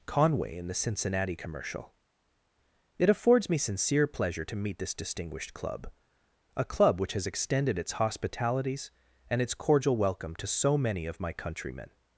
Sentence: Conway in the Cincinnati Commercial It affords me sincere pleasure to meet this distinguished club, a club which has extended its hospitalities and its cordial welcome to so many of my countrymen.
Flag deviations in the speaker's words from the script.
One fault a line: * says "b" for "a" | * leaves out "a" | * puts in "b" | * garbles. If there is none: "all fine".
all fine